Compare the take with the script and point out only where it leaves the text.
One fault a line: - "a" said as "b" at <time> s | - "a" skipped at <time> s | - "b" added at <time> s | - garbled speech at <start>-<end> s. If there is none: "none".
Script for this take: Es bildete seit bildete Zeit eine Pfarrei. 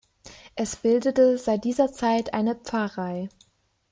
- "bildete" said as "dieser" at 1.6 s